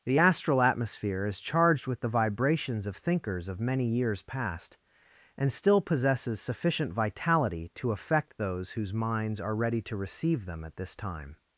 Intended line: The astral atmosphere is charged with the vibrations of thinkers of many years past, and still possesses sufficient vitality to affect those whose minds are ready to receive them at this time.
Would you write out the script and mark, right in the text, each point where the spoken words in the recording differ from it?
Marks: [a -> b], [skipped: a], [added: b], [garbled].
The astral atmosphere is charged with the vibrations of thinkers of many years past, and still possesses sufficient vitality to affect those whose minds are ready to receive them at this time.